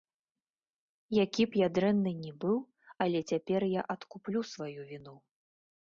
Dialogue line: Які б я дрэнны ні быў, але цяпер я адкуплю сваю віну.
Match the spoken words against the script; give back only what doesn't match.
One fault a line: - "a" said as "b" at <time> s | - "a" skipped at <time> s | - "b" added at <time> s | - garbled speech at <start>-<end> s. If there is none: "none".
none